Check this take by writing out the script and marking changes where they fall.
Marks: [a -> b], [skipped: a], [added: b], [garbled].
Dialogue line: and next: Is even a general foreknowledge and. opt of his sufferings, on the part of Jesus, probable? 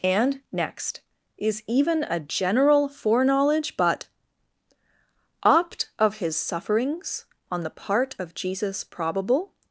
and next: Is even a general foreknowledge [and. -> but] opt of his sufferings, on the part of Jesus, probable?